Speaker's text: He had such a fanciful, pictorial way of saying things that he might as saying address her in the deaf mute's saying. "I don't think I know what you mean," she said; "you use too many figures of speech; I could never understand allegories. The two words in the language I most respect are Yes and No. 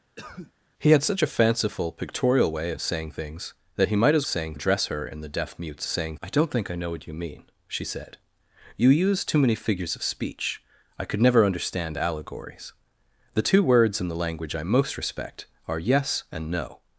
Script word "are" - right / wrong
right